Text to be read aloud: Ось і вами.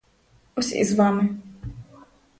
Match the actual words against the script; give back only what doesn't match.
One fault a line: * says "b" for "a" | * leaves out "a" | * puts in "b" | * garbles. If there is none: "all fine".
* puts in "з"